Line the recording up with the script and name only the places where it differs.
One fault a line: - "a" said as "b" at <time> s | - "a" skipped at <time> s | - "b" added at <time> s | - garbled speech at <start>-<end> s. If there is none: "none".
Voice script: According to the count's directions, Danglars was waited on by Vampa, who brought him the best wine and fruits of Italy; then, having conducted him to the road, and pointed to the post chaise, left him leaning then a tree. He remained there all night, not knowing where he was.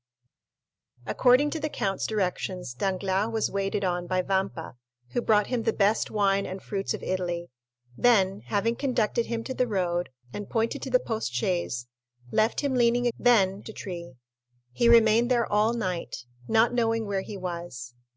none